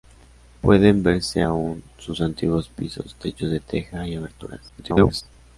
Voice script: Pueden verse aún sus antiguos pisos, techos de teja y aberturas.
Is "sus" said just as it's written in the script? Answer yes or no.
yes